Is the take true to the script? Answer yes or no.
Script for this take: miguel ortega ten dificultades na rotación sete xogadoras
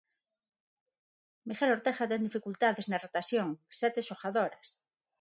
yes